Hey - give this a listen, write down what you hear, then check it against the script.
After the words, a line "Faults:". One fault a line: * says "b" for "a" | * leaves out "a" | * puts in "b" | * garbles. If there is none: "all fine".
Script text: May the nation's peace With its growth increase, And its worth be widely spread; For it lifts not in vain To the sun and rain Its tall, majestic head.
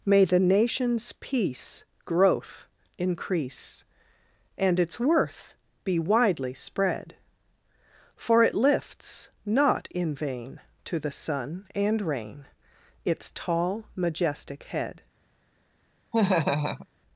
May the nation's peace Growth increase, And its worth be widely spread; For it lifts not in vain To the sun and rain Its tall, majestic head.
Faults:
* leaves out "With its"